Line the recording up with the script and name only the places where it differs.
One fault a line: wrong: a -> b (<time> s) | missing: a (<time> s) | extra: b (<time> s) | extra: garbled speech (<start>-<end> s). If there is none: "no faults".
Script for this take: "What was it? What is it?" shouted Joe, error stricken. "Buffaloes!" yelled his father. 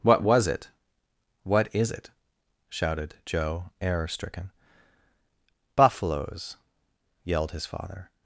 no faults